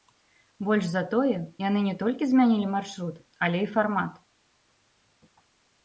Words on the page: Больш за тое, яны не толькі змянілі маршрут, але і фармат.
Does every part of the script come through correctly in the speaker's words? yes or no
yes